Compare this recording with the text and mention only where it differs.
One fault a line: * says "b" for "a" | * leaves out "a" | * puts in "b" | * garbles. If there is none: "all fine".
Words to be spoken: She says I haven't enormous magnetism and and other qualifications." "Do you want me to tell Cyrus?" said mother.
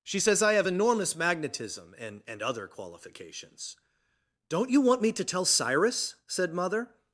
* says "have" for "haven't"
* says "Don't" for "Do"